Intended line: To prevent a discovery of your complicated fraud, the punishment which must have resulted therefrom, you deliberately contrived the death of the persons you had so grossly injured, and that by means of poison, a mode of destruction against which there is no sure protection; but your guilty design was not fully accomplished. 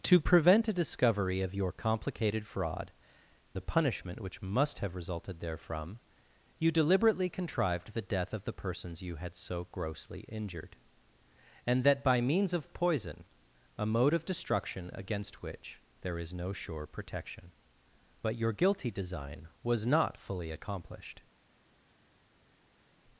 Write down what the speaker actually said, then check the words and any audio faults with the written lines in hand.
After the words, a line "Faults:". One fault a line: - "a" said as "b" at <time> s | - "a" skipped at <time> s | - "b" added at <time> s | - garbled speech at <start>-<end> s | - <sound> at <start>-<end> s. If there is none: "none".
To prevent a discovery of your complicated fraud, the punishment which must have resulted therefrom, you deliberately contrived the death of the persons you had so grossly injured, and that by means of poison, a mode of destruction against which there is no sure protection; but your guilty design was not fully accomplished.
Faults:
none